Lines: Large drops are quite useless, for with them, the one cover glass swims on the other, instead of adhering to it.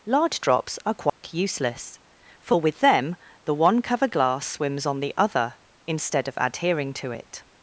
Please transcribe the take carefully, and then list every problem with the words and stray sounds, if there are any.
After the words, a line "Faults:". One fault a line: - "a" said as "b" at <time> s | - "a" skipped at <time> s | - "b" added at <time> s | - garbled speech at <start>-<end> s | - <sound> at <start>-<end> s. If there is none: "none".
Large drops are quite useless, for with them, the one cover glass swims on the other, instead of adhering to it.
Faults:
- dropout at 1.1-1.2 s